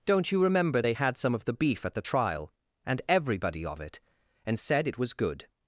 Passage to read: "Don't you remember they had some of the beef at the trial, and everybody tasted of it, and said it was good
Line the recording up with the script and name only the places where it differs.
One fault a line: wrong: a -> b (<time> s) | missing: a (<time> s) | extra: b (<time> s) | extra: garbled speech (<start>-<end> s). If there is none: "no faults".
missing: tasted (3.6 s)